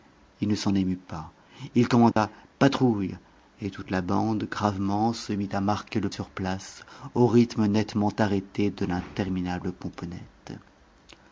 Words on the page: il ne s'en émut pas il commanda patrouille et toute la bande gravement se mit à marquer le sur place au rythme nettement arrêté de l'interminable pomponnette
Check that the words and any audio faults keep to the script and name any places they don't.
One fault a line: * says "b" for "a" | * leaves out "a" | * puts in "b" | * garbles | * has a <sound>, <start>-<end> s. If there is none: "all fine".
* has a dropout, 2.1-2.2 s